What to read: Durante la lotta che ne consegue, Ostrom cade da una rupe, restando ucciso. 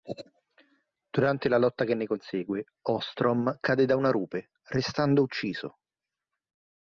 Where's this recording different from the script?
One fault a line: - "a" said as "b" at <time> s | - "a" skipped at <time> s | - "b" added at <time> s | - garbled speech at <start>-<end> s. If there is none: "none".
none